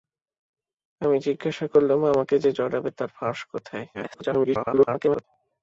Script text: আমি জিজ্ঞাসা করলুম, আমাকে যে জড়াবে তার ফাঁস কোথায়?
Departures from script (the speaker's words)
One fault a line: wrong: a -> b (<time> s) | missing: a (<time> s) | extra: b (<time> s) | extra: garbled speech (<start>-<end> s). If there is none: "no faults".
extra: garbled speech (3.9-5.2 s)